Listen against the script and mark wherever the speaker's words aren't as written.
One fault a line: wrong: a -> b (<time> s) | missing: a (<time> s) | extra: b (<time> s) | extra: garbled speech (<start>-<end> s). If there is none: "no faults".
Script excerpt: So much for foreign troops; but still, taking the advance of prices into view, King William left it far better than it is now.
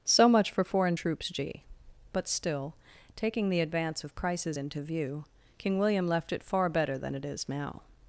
extra: g (1.3 s)
wrong: prices -> crisis (4.2 s)